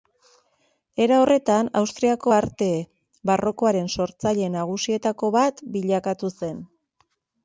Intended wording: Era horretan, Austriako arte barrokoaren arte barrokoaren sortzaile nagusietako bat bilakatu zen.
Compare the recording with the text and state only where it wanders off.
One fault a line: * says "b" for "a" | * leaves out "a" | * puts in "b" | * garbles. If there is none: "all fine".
* leaves out "arte barrokoaren"